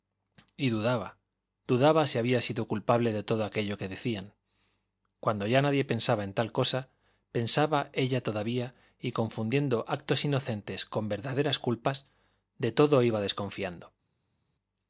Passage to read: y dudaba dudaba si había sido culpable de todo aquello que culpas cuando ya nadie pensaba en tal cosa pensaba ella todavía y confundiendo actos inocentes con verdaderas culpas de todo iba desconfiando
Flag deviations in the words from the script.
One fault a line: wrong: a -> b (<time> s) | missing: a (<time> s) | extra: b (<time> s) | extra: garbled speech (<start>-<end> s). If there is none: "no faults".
wrong: culpas -> decían (3.9 s)